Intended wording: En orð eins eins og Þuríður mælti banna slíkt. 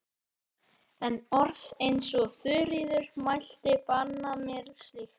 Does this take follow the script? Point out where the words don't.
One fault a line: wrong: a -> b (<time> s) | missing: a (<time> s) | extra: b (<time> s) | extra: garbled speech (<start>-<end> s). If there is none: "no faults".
missing: eins (2.1 s)
extra: mér (4.5 s)